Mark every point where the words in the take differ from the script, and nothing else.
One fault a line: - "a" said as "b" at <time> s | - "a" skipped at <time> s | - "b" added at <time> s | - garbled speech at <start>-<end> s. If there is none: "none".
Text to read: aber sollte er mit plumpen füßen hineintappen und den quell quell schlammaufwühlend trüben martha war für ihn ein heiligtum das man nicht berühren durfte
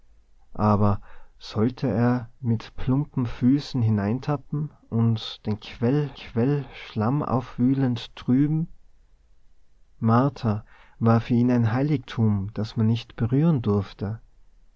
none